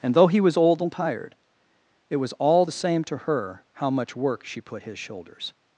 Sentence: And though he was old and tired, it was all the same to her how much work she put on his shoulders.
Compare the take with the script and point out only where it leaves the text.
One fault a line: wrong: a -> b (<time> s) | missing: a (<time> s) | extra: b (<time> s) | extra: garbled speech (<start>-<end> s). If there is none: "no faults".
missing: on (4.8 s)